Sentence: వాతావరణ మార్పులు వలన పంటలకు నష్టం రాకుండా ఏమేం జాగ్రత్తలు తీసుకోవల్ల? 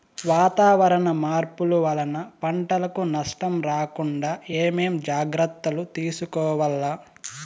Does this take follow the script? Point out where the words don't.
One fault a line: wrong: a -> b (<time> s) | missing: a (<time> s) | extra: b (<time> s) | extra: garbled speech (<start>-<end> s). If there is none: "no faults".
no faults